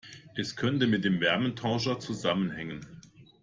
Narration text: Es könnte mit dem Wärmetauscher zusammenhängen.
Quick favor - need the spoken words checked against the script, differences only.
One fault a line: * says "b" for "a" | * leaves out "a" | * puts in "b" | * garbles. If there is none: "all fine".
all fine